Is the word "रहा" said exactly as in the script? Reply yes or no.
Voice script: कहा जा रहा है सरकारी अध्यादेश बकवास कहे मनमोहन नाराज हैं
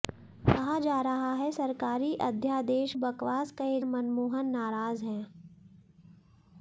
yes